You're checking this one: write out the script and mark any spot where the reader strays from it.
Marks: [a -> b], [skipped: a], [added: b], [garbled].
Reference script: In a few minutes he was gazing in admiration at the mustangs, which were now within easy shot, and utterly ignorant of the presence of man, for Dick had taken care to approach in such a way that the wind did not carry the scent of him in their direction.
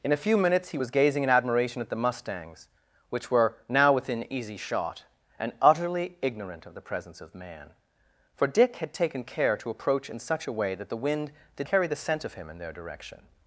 In a few minutes he was gazing in admiration at the mustangs, which were now within easy shot, and utterly ignorant of the presence of man, for Dick had taken care to approach in such a way that the wind did [skipped: not] carry the scent of him in their direction.